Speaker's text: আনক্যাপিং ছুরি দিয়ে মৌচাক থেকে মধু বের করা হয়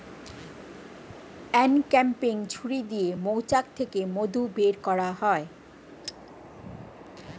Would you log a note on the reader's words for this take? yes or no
no